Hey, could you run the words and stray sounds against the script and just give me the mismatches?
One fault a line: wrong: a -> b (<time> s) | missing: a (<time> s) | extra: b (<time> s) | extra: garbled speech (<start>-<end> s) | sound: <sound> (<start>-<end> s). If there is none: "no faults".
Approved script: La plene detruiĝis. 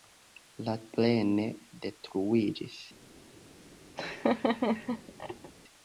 sound: laugh (4.0-5.5 s)